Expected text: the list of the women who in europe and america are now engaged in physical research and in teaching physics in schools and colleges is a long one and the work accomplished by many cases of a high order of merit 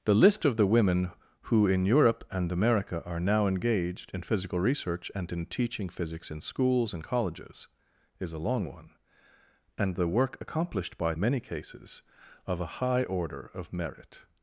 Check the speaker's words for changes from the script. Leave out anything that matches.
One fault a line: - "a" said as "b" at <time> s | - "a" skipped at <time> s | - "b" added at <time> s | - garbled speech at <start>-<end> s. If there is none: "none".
none